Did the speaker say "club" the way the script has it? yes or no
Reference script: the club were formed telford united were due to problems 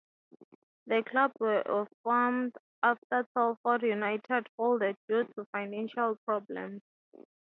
yes